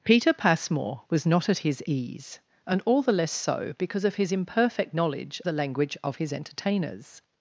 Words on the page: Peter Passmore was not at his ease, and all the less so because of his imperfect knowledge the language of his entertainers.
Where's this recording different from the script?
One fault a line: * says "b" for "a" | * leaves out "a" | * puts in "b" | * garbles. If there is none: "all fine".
all fine